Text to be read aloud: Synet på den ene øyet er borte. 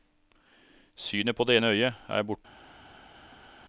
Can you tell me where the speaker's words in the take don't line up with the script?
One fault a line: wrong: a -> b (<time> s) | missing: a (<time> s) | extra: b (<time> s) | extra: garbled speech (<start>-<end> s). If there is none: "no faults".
wrong: den -> det (1.4 s)